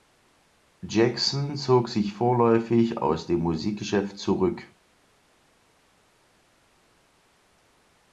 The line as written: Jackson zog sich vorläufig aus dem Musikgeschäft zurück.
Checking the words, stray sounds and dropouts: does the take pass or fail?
pass